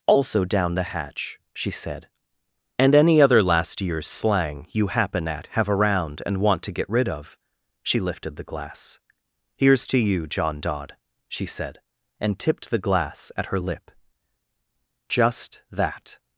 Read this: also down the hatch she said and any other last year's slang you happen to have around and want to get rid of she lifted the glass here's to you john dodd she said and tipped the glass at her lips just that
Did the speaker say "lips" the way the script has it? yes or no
no